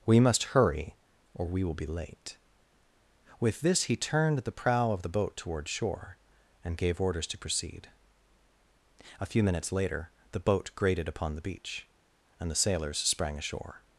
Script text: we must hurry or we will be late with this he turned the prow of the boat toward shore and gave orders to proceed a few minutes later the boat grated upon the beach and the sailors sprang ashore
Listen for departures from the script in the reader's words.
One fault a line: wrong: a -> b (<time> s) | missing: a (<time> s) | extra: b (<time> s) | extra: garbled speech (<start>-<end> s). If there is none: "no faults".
no faults